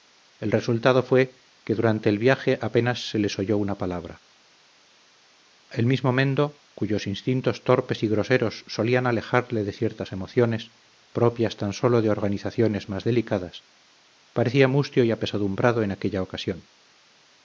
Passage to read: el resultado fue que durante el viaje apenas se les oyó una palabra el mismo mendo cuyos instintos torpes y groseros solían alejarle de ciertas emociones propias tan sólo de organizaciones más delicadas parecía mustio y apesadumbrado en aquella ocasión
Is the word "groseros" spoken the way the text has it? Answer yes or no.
yes